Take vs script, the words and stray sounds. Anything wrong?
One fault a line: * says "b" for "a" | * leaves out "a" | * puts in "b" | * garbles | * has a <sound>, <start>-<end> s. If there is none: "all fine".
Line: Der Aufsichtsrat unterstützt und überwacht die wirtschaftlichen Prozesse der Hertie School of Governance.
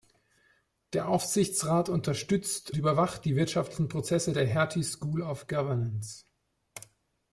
* leaves out "und"